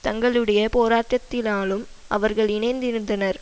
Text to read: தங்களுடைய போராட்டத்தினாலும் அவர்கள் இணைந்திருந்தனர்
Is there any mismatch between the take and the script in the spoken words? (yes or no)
no